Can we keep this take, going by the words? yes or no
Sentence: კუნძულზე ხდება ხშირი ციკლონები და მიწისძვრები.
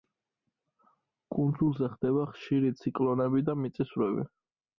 yes